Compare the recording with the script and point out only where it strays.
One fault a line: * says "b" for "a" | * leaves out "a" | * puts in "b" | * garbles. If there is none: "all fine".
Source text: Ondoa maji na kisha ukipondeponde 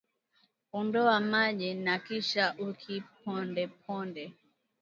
all fine